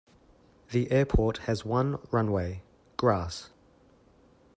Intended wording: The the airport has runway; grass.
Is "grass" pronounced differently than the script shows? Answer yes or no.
no